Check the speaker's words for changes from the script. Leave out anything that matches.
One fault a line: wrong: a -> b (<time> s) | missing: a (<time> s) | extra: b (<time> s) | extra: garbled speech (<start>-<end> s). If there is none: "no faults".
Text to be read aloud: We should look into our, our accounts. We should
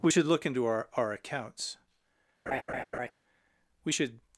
no faults